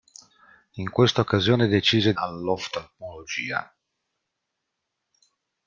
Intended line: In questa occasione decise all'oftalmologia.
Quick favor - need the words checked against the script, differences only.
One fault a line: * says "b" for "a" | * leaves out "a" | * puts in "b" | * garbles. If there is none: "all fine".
all fine